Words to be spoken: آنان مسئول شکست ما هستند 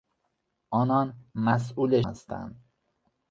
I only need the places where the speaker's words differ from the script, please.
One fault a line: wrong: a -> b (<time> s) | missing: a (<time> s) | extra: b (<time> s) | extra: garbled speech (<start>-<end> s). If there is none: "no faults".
missing: شکست ما (2.0 s)